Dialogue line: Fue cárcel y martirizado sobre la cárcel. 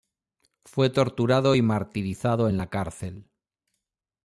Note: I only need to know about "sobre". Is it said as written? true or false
false